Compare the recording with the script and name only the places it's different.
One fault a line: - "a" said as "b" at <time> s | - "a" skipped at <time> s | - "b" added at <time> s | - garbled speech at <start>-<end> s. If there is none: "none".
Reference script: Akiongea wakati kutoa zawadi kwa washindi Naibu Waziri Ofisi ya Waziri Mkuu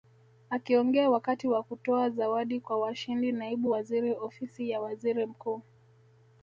- "wa" added at 1.5 s